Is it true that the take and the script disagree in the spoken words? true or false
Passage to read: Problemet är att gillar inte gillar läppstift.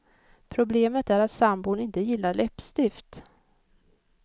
true